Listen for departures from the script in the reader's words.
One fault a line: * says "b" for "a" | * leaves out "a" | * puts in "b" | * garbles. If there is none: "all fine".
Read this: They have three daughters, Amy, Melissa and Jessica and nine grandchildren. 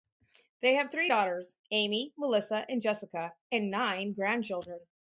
all fine